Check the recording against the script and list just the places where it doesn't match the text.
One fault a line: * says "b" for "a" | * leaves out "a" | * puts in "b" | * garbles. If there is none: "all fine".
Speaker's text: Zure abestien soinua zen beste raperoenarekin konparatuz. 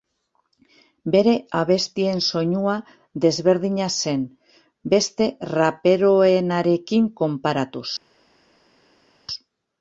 * says "Bere" for "Zure"
* puts in "desberdina"